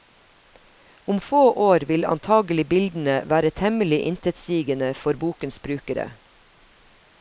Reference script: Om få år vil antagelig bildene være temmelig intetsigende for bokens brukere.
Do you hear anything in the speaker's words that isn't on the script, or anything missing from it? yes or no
no